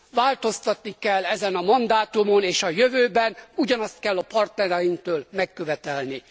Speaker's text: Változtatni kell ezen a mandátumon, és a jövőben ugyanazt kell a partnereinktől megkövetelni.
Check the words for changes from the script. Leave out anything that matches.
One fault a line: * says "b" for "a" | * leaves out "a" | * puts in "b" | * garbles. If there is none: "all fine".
all fine